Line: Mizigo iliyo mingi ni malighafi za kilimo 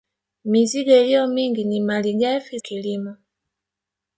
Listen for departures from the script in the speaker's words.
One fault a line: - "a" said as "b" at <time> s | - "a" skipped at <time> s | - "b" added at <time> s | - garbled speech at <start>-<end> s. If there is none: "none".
- "za" skipped at 2.6 s